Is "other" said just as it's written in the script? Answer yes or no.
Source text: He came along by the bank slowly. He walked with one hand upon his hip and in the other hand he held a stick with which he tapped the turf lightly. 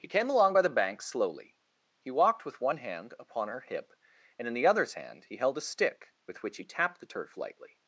no